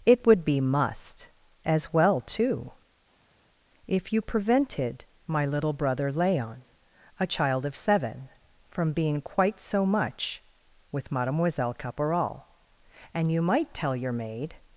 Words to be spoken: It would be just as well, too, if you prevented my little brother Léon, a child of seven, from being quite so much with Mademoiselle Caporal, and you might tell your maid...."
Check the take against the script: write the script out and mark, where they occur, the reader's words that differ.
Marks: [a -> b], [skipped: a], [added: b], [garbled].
It would be [just -> must] as well, too, if you prevented my little brother Léon, a child of seven, from being quite so much with Mademoiselle Caporal, and you might tell your maid...."